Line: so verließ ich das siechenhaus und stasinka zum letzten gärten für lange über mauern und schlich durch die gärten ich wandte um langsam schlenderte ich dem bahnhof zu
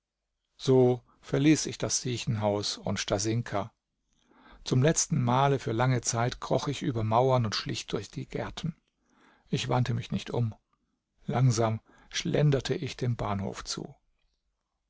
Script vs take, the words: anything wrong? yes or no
yes